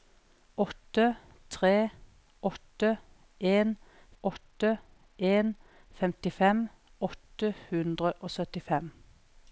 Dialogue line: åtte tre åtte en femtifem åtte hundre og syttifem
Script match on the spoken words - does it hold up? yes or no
no